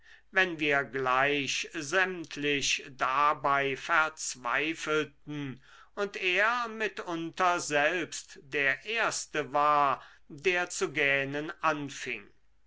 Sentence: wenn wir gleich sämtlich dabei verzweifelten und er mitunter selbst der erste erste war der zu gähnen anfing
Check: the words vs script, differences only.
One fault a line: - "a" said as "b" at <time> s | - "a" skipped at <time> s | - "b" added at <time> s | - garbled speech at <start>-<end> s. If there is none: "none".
- "erste" skipped at 9.5 s